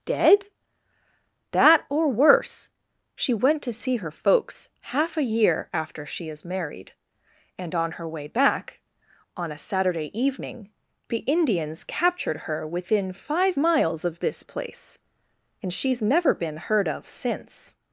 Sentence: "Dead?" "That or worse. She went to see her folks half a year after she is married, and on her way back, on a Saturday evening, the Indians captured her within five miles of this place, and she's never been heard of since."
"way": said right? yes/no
yes